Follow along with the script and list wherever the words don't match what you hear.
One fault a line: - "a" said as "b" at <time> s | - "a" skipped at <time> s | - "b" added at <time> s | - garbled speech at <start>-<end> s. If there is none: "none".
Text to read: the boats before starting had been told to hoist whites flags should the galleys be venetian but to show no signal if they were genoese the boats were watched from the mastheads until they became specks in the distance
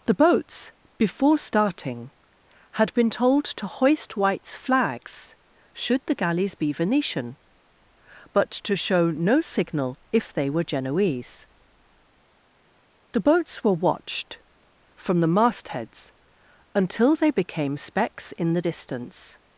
none